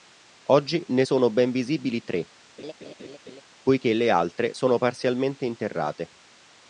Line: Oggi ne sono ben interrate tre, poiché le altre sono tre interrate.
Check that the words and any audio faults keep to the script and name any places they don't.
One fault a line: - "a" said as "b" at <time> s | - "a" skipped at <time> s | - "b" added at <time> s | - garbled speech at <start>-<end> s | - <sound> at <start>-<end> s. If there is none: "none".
- "interrate" said as "visibili" at 1.5 s
- laugh at 2.6-3.4 s
- "tre" said as "parzialmente" at 4.8 s